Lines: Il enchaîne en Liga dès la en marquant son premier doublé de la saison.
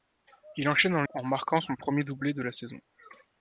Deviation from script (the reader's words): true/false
true